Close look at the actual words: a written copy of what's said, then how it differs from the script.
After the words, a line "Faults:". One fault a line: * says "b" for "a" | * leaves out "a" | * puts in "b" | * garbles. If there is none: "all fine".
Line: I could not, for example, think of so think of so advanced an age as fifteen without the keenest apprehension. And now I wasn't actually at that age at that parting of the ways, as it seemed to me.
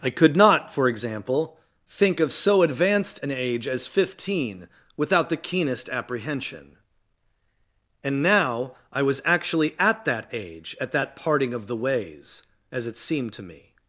I could not, for example, think of so advanced an age as fifteen without the keenest apprehension. And now I was actually at that age at that parting of the ways, as it seemed to me.
Faults:
* leaves out "think of so"
* says "was" for "wasn't"